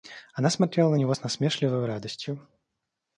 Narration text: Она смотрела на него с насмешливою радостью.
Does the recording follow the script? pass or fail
pass